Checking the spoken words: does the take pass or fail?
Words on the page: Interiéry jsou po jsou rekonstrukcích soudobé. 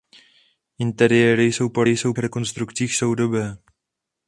pass